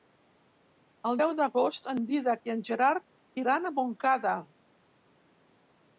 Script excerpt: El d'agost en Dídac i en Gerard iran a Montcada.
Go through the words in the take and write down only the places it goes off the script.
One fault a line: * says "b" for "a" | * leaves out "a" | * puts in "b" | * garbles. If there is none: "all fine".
* puts in "deu"